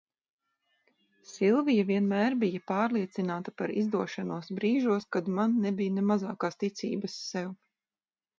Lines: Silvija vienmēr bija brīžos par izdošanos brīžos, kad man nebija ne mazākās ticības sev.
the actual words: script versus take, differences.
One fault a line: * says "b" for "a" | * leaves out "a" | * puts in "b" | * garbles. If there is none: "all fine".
* says "pārliecināta" for "brīžos"